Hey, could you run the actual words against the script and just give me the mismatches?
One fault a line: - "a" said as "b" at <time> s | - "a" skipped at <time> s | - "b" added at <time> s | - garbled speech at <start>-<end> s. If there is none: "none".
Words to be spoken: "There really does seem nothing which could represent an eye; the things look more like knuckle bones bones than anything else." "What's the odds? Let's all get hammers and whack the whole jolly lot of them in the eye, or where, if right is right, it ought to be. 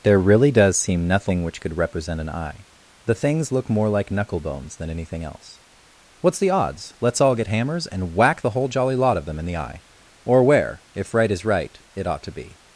- "bones" skipped at 4.8 s